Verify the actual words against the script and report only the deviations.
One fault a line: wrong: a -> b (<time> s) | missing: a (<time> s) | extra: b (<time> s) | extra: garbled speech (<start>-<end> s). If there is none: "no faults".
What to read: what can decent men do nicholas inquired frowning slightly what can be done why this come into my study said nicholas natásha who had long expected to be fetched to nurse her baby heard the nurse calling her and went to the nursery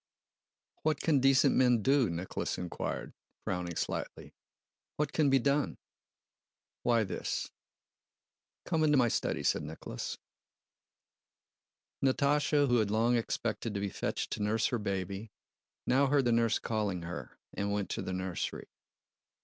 extra: now (15.9 s)